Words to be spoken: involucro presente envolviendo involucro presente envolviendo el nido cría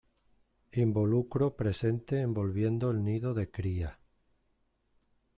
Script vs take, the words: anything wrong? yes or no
yes